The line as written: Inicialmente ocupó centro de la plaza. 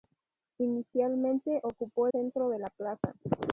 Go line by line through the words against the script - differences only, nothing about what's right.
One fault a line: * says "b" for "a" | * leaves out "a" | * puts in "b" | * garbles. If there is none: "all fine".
all fine